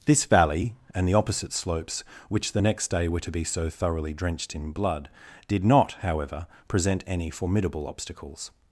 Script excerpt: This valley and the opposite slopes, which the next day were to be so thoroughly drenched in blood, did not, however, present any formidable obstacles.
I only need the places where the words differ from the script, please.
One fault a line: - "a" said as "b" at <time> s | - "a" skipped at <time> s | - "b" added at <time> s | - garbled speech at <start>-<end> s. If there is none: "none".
none